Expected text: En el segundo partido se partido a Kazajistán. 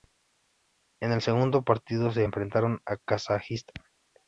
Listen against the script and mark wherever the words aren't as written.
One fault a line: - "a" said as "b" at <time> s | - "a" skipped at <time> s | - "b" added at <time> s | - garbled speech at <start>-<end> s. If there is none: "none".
- "partido" said as "enfrentaron" at 2.2 s